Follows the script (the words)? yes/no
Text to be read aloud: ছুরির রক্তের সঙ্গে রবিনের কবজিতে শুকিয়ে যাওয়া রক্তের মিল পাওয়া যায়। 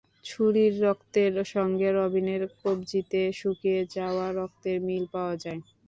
yes